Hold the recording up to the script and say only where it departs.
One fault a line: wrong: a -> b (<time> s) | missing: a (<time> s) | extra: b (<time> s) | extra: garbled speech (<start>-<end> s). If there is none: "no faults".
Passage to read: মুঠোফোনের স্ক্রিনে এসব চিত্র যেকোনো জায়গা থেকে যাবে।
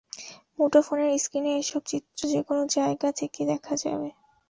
extra: দেখা (3.5 s)